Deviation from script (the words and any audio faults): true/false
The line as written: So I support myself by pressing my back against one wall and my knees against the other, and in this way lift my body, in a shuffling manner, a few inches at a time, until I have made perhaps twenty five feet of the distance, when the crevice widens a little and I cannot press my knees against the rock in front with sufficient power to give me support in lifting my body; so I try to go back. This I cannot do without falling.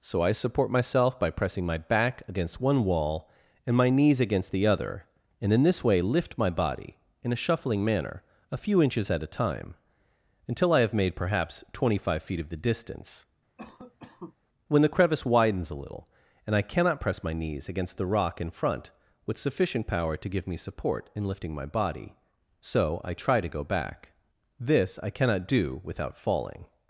true